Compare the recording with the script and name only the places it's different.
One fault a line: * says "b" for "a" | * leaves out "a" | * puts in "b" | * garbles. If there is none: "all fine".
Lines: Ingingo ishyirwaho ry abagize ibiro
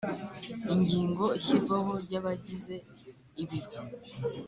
all fine